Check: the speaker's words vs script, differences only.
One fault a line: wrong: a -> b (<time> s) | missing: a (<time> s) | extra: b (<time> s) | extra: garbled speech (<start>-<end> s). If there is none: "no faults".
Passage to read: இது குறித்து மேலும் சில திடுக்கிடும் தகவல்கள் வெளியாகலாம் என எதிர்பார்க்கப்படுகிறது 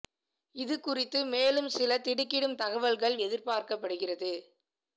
missing: வெளியாகலாம் என (3.2 s)